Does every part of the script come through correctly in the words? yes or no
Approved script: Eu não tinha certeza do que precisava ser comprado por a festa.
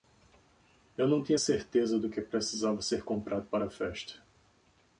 no